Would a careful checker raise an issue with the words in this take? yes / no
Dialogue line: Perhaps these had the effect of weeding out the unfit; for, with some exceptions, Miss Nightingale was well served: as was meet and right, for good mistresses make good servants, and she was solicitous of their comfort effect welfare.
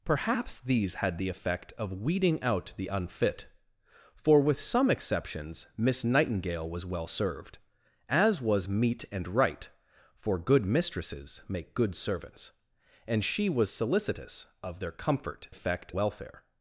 no